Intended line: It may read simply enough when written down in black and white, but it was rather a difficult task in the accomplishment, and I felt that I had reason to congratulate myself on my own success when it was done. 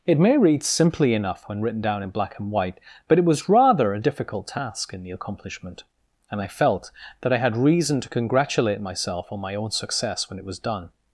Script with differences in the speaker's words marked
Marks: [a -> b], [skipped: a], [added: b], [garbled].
It may read simply enough when written down in black and white, but it was rather a difficult task in the accomplishment, and I felt that I had reason to congratulate myself on my own success when it was done.